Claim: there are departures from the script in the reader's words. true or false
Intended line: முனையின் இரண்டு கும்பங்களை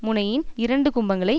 false